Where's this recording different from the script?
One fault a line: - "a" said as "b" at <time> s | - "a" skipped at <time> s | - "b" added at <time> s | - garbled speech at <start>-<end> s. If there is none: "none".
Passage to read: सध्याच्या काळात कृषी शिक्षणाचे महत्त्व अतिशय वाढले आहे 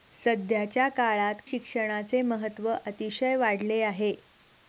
- "कृषी" skipped at 1.4 s